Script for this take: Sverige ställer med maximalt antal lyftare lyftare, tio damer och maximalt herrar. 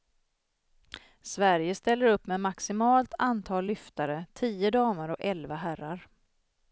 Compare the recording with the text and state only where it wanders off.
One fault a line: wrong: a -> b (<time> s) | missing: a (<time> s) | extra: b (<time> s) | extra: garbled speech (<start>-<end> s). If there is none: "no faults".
extra: upp (2.0 s)
missing: lyftare (4.3 s)
wrong: maximalt -> elva (5.2 s)